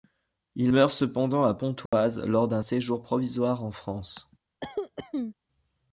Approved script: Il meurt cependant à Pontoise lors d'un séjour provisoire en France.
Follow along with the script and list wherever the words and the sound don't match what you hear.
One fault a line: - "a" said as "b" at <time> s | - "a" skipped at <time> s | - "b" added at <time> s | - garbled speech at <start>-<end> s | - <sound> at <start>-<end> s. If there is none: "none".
- dropout at 1.9-1.9 s
- cough at 4.6-5.3 s